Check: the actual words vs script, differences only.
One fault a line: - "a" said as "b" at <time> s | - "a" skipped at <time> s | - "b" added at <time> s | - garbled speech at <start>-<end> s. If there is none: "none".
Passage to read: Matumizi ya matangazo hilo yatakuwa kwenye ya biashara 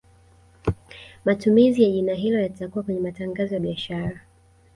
- "matangazo" said as "jina" at 1.9 s
- "matangazo" added at 3.0 s